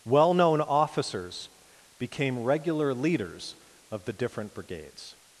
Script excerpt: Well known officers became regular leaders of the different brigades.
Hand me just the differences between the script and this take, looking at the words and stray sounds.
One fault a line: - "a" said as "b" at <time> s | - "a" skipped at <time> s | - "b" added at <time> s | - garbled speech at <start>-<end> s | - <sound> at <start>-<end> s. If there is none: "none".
none